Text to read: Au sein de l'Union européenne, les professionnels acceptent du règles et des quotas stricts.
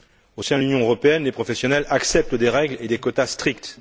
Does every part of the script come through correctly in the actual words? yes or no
no